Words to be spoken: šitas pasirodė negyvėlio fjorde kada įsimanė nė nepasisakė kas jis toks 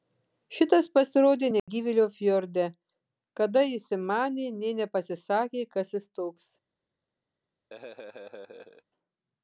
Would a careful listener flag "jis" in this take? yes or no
no